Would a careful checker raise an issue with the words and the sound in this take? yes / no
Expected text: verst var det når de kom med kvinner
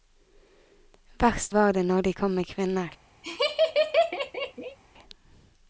yes